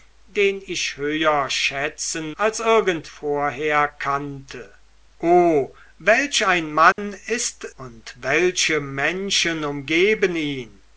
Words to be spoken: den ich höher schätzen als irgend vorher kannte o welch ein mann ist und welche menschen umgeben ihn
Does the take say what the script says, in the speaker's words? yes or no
yes